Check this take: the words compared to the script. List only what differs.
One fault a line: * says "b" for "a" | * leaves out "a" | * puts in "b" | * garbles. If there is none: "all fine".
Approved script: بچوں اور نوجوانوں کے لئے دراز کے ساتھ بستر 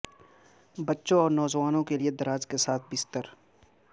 all fine